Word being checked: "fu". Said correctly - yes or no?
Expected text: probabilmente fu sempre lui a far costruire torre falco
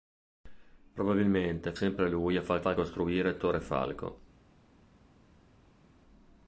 no